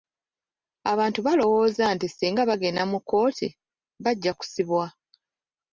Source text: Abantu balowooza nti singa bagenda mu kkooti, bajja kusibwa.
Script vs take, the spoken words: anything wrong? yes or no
no